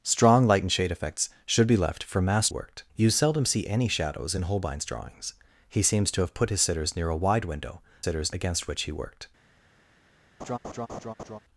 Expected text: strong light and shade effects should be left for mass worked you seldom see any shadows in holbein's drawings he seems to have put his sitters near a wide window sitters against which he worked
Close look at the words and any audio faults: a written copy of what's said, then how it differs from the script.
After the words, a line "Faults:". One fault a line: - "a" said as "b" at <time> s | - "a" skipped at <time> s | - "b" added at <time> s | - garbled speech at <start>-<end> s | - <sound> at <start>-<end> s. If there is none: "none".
strong light and shade effects should be left for mass worked you seldom see any shadows in holbein's drawings he seems to have put his sitters near a wide window sitters against which he worked
Faults:
- laugh at 10.4-11.4 s